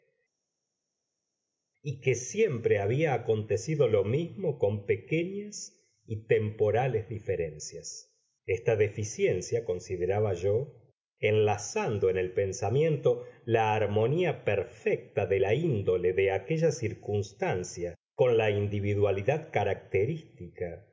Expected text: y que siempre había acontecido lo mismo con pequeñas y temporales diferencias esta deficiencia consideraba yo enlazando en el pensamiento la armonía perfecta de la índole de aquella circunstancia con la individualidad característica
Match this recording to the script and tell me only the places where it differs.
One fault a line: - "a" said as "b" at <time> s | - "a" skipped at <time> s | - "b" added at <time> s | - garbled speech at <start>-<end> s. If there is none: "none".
none